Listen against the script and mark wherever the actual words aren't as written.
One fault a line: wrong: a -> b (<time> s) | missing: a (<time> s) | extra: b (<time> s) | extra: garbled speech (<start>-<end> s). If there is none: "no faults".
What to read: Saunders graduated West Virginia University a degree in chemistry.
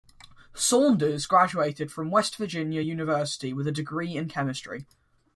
extra: from (1.9 s)
extra: with (3.5 s)